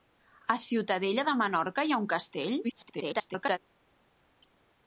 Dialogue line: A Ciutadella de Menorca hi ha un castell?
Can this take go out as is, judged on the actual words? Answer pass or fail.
fail